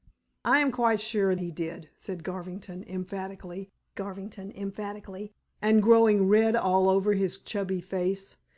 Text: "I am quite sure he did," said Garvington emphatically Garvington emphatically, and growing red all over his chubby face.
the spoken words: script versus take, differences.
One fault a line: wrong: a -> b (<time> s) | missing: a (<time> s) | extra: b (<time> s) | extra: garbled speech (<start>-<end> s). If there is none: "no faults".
no faults